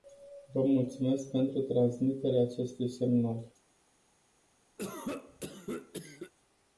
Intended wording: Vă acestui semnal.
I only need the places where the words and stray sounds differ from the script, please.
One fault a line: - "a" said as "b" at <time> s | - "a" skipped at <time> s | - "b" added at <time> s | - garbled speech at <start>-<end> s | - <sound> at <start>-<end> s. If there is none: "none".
- "mulțumesc pentru transmiterea" added at 0.6 s
- cough at 4.8-6.3 s